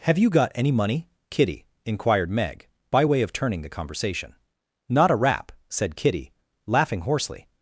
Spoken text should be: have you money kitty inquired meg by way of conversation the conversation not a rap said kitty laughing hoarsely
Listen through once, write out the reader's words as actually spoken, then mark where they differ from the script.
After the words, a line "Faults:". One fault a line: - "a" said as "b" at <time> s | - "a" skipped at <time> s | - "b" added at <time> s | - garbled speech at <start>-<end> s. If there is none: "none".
have you got any money kitty inquired meg by way of turning the conversation not a rap said kitty laughing hoarsely
Faults:
- "got any" added at 0.3 s
- "conversation" said as "turning" at 3.3 s